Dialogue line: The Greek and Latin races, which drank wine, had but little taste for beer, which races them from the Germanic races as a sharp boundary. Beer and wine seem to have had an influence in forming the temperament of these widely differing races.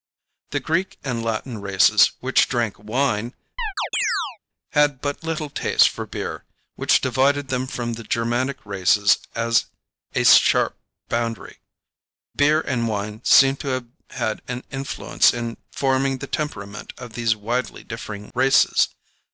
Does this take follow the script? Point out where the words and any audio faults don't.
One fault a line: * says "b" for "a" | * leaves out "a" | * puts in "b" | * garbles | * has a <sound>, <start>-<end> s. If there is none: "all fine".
* has a chirp, 3.6-4.4 s
* says "divided" for "races"